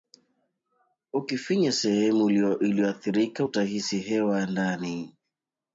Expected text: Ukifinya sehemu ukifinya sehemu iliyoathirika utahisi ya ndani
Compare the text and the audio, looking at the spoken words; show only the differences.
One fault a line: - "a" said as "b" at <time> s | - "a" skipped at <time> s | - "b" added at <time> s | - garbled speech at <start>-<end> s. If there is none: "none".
- "ukifinya sehemu" skipped at 2.3 s
- "hewa" added at 4.0 s